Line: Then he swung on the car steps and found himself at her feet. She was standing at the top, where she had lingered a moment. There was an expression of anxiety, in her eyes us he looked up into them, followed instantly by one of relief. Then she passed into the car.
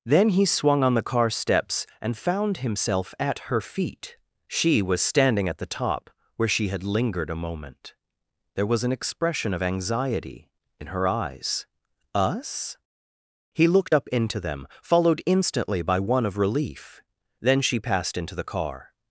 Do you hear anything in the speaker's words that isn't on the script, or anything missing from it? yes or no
no